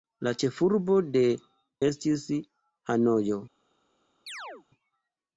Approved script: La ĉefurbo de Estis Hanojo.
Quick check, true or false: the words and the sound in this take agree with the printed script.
false